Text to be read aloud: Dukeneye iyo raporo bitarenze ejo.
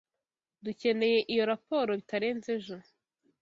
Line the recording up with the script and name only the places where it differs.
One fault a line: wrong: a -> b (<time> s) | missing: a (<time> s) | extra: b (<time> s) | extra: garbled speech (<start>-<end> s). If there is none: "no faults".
no faults